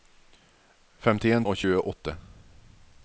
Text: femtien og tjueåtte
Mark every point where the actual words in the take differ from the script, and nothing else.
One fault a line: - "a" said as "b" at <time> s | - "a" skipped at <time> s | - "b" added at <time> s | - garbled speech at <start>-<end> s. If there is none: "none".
none